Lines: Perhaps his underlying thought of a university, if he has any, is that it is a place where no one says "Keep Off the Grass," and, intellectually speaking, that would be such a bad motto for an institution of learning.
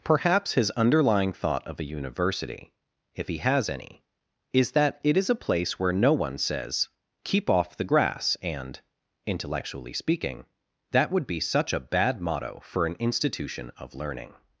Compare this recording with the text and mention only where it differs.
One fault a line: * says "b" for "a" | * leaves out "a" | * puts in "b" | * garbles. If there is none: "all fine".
all fine